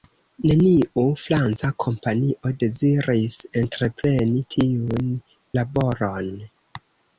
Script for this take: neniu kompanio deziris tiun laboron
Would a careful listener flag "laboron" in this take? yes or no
no